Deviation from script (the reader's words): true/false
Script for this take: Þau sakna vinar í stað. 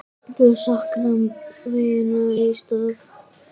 false